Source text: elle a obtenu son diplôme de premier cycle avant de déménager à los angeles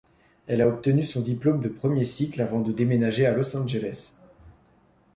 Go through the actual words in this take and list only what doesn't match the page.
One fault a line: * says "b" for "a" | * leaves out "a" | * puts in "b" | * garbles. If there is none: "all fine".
all fine